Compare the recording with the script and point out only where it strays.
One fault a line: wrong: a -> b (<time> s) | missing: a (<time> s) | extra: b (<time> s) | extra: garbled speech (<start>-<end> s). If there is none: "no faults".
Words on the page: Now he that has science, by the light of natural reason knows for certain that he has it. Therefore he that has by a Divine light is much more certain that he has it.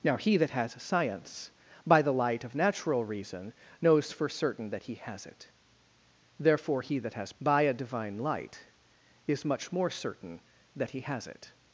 no faults